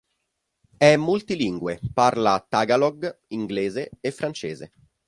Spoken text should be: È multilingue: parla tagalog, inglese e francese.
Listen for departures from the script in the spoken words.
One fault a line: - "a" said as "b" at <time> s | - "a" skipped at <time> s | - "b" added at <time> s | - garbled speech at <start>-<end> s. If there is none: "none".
none